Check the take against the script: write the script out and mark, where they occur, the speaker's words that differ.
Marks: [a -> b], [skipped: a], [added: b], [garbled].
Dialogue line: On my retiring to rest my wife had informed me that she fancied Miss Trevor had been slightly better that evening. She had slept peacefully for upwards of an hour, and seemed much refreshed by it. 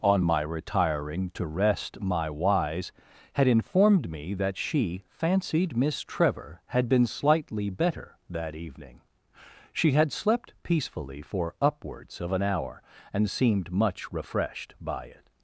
On my retiring to rest my [wife -> wise] had informed me that she fancied Miss Trevor had been slightly better that evening. She had slept peacefully for upwards of an hour, and seemed much refreshed by it.